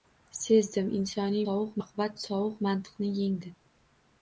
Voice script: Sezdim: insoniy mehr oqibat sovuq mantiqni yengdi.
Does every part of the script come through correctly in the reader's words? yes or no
no